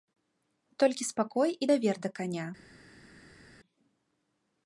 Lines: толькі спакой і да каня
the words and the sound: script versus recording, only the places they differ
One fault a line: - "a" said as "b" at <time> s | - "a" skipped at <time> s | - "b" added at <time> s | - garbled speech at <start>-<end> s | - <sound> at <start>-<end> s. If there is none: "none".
- "давер" added at 1.7 s